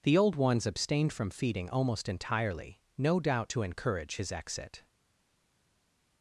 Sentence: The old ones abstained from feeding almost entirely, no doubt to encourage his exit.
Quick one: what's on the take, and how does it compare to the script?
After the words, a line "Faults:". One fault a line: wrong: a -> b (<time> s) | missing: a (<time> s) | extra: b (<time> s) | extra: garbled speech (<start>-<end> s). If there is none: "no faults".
The old ones abstained from feeding almost entirely, no doubt to encourage his exit.
Faults:
no faults